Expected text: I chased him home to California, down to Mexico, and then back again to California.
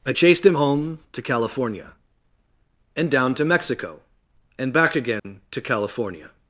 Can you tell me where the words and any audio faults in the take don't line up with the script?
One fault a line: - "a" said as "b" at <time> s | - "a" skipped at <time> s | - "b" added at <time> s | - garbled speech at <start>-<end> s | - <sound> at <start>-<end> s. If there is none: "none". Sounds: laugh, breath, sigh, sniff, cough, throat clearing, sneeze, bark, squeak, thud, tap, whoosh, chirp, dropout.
- "and" added at 3.0 s
- "then" skipped at 4.7 s
- dropout at 5.2-5.2 s